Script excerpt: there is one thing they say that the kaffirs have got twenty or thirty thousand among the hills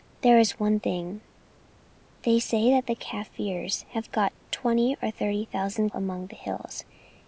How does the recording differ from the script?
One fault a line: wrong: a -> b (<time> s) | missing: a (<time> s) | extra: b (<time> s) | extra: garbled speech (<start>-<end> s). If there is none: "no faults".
no faults